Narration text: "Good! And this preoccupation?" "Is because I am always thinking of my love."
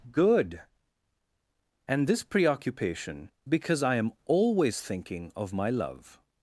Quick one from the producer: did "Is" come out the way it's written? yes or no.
no